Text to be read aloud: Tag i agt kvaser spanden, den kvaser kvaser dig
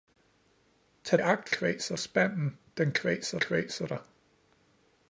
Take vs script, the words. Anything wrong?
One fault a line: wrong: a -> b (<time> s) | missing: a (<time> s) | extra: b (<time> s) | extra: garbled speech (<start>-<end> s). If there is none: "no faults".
no faults